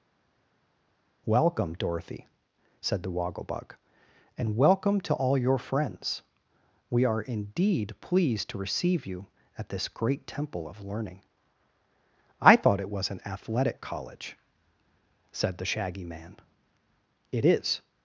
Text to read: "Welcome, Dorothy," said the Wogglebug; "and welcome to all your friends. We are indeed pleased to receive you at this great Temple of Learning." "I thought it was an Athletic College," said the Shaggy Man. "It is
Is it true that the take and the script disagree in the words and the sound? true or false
false